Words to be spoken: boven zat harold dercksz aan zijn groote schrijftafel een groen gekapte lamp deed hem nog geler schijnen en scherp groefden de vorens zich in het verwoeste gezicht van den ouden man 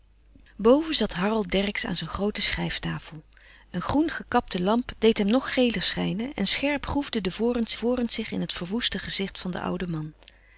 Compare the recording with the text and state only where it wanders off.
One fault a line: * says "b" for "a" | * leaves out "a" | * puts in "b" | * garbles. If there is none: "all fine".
* puts in "vorens"